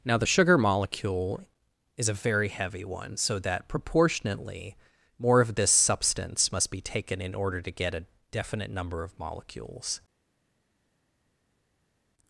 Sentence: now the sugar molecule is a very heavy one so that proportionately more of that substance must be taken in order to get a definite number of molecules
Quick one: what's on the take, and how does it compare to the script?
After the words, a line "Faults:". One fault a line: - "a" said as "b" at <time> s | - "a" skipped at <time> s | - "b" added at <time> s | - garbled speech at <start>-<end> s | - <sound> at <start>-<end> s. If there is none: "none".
now the sugar molecule is a very heavy one so that proportionately more of this substance must be taken in order to get a definite number of molecules
Faults:
- "that" said as "this" at 5.5 s